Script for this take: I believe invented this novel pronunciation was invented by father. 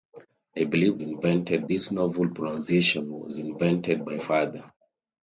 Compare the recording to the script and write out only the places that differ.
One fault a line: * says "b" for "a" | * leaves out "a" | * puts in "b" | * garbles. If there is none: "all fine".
all fine